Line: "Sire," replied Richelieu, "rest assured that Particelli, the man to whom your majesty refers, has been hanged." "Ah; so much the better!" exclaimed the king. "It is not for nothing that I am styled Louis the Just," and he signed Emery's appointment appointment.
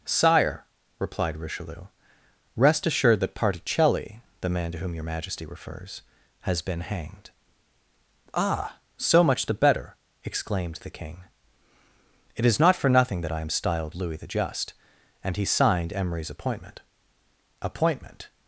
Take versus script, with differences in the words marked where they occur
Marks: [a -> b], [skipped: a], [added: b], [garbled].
"Sire," replied Richelieu, "rest assured that Particelli, the man to whom your majesty refers, has been hanged." "Ah; so much the better!" exclaimed the king. "It is not for nothing that I am styled Louis the Just," and he signed Emery's appointment appointment.